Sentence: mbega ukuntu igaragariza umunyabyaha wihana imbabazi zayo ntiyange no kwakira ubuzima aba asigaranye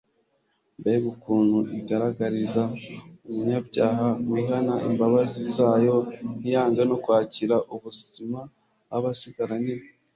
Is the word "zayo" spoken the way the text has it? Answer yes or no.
yes